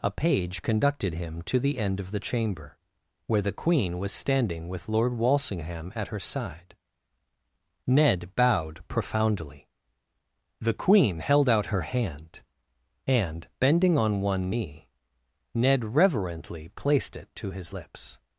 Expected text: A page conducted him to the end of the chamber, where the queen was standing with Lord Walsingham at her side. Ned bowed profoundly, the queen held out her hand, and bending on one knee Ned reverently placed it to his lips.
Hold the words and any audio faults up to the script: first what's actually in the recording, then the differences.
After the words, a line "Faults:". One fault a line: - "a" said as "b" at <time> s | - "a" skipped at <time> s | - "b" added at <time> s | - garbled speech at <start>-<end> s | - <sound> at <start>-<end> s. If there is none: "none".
A page conducted him to the end of the chamber, where the queen was standing with Lord Walsingham at her side. Ned bowed profoundly, the queen held out her hand, and bending on one knee Ned reverently placed it to his lips.
Faults:
none